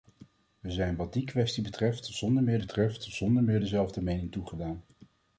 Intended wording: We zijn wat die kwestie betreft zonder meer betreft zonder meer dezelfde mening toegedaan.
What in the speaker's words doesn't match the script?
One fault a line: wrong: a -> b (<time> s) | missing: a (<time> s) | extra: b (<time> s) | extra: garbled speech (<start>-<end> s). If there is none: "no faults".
no faults